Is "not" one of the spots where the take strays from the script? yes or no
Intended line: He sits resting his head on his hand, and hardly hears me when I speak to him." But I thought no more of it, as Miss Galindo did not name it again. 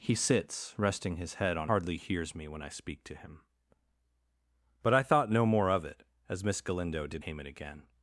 yes